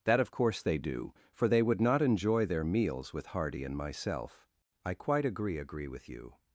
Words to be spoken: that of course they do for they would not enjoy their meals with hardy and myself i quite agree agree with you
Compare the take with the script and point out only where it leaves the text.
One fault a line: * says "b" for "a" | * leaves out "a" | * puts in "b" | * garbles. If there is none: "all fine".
all fine